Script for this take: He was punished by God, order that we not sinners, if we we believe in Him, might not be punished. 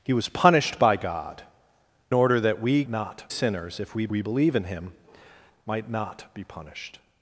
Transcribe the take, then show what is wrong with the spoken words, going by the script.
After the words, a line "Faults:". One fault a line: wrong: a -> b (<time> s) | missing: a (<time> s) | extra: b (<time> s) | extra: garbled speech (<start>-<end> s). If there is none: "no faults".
He was punished by God, order that we not sinners, if we we believe in Him, might not be punished.
Faults:
no faults